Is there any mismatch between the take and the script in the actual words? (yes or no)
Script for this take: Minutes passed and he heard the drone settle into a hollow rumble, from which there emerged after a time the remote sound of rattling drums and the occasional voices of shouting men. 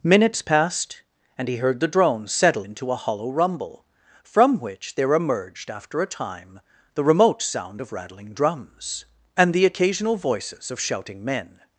no